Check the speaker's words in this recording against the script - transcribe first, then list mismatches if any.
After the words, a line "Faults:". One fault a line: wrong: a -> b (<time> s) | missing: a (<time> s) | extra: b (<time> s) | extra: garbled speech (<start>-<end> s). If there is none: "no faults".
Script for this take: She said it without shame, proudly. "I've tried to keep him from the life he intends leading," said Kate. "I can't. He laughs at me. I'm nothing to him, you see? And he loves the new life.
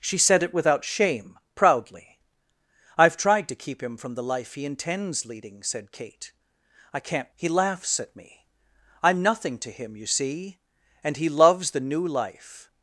She said it without shame, proudly. "I've tried to keep him from the life he intends leading," said Kate. "I can't. He laughs at me. I'm nothing to him, you see? And he loves the new life.
Faults:
no faults